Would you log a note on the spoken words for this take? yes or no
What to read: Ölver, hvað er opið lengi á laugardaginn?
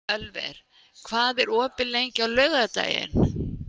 no